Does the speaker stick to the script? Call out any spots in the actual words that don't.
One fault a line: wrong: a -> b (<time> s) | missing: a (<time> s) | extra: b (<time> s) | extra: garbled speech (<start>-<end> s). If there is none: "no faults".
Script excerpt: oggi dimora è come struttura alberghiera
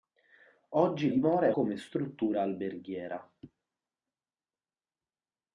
no faults